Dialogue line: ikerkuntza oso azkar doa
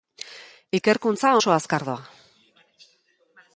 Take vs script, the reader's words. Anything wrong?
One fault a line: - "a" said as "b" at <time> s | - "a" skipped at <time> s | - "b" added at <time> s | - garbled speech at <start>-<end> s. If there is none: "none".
none